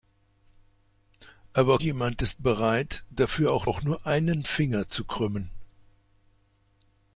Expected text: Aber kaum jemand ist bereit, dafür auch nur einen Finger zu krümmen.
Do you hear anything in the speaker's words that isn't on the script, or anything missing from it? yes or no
yes